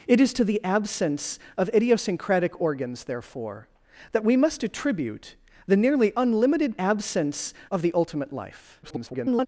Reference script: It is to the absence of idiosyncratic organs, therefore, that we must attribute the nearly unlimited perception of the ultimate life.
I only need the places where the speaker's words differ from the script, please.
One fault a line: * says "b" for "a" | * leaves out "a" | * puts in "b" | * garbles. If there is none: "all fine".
* says "absence" for "perception"
* garbles